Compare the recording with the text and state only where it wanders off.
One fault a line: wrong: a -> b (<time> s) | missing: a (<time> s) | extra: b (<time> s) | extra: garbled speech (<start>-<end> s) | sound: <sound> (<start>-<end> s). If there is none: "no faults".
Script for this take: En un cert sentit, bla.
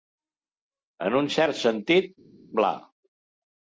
no faults